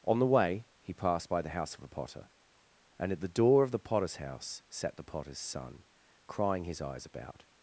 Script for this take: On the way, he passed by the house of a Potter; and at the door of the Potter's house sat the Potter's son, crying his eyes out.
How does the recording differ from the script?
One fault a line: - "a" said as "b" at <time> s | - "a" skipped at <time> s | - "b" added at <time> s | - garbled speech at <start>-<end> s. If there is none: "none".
- "out" said as "about" at 7.0 s